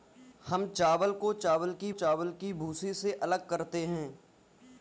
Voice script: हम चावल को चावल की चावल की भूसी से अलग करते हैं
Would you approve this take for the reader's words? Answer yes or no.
yes